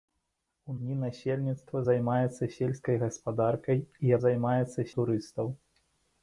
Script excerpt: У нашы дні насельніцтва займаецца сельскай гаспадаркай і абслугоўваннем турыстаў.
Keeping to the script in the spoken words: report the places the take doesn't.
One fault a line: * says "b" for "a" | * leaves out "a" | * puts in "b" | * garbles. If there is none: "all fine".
* leaves out "нашы"
* says "займаецца" for "абслугоўваннем"